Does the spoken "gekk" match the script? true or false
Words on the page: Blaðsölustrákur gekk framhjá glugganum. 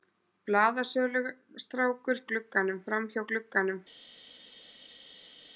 false